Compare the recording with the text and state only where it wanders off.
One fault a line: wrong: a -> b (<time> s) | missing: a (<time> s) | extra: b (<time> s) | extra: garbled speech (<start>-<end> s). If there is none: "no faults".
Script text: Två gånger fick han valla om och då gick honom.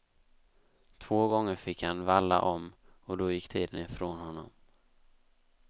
extra: tiden ifrån (3.5 s)